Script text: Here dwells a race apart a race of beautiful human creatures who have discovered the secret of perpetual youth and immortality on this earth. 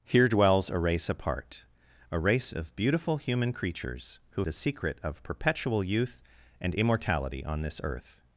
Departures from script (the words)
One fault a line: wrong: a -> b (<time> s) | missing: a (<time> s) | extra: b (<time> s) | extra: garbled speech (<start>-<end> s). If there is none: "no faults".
missing: have discovered (4.4 s)